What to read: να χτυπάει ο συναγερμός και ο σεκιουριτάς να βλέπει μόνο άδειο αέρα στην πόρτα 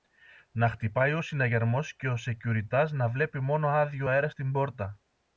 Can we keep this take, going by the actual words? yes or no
yes